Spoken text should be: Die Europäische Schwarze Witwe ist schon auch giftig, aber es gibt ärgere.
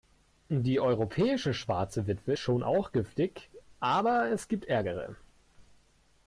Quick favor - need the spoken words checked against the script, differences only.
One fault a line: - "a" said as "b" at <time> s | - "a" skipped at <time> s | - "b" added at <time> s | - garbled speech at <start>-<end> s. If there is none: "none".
- "ist" skipped at 2.3 s